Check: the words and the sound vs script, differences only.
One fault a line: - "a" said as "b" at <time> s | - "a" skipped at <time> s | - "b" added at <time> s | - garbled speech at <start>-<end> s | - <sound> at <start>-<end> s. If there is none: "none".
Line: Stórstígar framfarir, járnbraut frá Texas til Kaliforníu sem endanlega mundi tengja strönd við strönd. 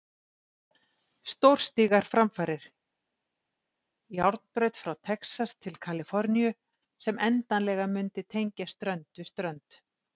none